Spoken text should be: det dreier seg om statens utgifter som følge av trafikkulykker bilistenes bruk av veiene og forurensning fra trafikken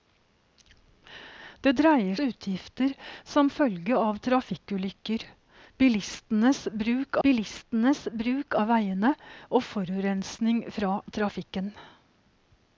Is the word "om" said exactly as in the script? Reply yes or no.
no